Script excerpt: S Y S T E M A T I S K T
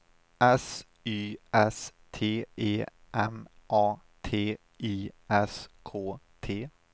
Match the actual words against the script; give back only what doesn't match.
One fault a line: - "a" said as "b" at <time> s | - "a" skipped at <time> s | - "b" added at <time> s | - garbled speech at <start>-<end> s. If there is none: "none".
none